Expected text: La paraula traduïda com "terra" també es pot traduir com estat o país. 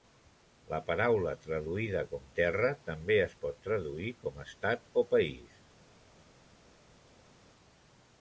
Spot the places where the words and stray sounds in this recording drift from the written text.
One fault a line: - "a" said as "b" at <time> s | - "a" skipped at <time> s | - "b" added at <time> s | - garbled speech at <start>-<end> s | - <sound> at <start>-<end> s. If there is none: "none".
none